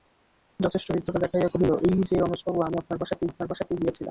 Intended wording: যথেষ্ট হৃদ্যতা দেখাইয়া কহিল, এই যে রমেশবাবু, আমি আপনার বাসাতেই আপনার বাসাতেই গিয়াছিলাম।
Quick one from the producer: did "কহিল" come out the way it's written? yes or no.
yes